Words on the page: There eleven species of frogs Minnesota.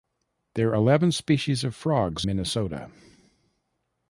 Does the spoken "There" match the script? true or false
true